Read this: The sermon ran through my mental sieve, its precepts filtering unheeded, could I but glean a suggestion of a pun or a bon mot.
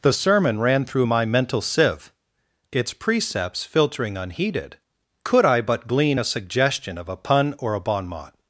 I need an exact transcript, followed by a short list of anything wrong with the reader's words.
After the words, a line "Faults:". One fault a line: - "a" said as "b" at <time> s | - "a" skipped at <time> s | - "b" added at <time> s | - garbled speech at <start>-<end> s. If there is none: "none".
The sermon ran through my mental sieve, its precepts filtering unheeded, could I but glean a suggestion of a pun or a bon mot.
Faults:
none